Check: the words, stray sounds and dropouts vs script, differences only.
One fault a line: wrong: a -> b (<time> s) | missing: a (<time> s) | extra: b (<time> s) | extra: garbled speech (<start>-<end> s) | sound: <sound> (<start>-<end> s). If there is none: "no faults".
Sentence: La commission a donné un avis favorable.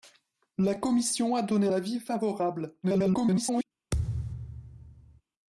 missing: un (1.7 s)
extra: garbled speech (2.8-3.6 s)
sound: thud (3.9-5.2 s)